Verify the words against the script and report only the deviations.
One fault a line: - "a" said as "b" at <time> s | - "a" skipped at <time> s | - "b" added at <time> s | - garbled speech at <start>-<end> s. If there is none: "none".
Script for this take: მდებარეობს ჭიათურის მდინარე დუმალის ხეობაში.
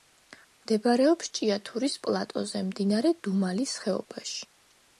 - "პლატოზე" added at 2.1 s